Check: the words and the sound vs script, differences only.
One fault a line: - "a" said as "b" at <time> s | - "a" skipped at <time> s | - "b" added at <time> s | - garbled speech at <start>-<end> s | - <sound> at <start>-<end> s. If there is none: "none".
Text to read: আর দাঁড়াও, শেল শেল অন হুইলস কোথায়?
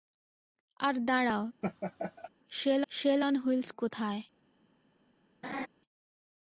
- laugh at 1.6-2.3 s
- laugh at 5.4-5.7 s